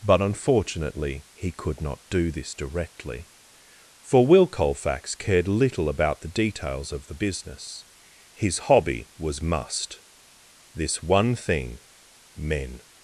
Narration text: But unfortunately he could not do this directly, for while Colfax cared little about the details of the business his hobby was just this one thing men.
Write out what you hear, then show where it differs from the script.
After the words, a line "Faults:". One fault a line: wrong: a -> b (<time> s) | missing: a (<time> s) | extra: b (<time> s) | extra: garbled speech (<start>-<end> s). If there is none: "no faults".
But unfortunately he could not do this directly, for will Colfax cared little about the details of the business his hobby was must this one thing men.
Faults:
wrong: while -> will (4.2 s)
wrong: just -> must (9.4 s)